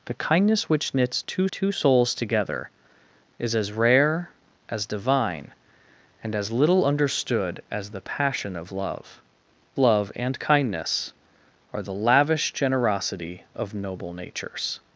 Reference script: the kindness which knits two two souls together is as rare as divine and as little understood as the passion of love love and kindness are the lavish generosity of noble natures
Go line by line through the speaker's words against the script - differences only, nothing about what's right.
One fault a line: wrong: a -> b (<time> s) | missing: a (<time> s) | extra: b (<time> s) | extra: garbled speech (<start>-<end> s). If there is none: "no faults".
no faults